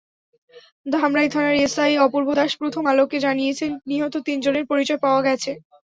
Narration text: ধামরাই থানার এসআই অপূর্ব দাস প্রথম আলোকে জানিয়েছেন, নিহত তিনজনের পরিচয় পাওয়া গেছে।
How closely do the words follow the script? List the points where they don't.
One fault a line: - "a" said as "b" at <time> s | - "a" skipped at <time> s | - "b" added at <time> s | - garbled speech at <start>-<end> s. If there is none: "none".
none